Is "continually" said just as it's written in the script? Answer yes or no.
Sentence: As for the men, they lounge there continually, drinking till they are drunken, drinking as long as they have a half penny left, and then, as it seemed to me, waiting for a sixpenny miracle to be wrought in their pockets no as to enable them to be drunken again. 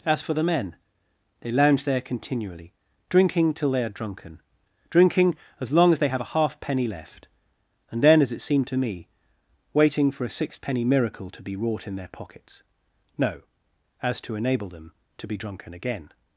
yes